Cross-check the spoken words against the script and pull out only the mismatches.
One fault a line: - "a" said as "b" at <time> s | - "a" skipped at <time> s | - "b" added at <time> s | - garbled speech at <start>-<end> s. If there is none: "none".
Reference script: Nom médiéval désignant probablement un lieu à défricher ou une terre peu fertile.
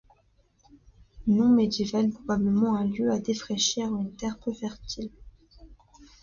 - "désignant" skipped at 2.1 s